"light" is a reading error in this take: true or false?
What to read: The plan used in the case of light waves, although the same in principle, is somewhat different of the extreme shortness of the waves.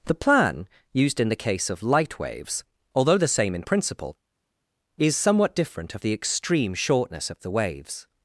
false